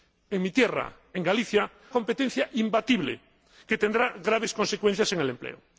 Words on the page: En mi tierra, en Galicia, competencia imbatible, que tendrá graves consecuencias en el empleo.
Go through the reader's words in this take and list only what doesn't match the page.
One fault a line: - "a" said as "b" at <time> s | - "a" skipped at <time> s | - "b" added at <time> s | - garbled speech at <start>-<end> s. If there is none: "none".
none